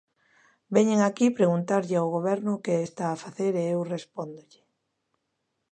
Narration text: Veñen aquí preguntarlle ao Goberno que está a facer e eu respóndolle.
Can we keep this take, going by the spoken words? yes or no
yes